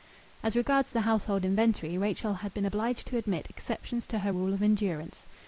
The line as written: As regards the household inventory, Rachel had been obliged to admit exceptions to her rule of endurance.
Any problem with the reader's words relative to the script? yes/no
no